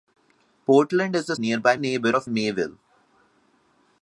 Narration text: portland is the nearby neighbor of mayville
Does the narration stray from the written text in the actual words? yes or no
no